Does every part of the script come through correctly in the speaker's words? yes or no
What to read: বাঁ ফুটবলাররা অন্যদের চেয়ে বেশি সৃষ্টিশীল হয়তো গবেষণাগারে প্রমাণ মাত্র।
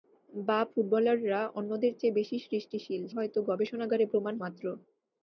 yes